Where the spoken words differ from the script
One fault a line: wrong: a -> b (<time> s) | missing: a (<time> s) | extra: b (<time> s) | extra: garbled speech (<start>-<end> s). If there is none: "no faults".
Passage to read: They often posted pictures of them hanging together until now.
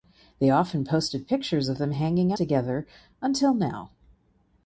no faults